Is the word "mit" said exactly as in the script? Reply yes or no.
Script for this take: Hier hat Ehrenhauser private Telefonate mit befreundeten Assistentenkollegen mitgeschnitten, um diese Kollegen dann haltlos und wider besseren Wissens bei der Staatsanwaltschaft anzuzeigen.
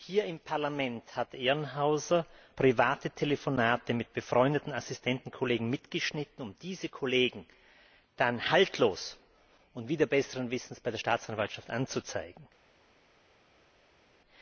yes